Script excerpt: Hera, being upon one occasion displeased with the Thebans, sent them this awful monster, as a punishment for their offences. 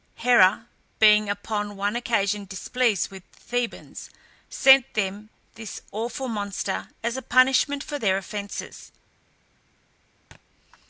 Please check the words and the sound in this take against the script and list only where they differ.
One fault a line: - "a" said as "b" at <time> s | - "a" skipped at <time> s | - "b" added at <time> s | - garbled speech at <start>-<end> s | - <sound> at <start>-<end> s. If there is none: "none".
- thud at 10.3-10.4 s